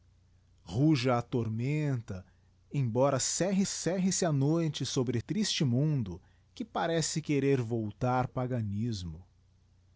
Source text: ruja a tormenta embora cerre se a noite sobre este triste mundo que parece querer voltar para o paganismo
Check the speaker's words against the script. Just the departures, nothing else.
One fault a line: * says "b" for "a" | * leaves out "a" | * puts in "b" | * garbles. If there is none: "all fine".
* puts in "cerre"
* leaves out "este"
* leaves out "para"